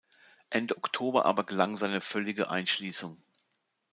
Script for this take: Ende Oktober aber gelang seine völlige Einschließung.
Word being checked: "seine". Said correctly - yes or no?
yes